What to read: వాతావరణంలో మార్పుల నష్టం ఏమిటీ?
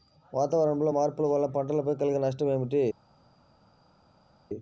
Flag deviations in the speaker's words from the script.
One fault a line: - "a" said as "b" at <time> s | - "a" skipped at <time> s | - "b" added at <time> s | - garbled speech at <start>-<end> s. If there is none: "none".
- "వలన పంటలపై కలిగే" added at 1.3 s